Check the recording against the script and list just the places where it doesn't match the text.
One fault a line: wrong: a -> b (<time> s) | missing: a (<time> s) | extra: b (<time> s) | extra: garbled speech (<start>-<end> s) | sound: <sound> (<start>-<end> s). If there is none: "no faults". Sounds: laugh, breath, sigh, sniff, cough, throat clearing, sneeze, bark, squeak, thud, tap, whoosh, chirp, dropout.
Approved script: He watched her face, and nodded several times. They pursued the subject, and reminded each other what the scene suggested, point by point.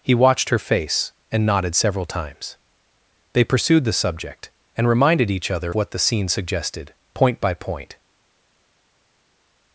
no faults